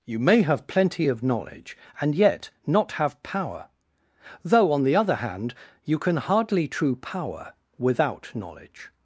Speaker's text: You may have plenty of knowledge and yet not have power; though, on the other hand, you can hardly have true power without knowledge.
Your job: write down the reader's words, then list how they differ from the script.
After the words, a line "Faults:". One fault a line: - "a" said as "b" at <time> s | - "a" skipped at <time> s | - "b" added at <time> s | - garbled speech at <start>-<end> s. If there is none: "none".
You may have plenty of knowledge and yet not have power; though, on the other hand, you can hardly true power without knowledge.
Faults:
- "have" skipped at 6.7 s